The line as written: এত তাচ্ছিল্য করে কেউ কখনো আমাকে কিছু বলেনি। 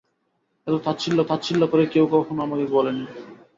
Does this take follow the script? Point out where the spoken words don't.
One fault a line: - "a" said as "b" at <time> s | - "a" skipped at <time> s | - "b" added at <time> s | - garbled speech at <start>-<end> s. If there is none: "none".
- "তাচ্ছিল্য" added at 1.3 s
- "কিছু" skipped at 2.6 s